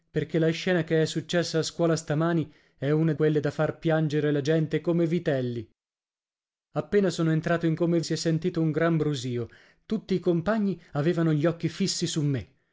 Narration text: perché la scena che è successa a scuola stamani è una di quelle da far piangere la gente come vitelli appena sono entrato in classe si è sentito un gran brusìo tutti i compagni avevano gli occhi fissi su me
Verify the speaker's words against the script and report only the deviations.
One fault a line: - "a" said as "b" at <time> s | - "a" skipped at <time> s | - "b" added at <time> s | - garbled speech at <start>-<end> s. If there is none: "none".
- "di" skipped at 3.1 s
- "classe" said as "come" at 7.7 s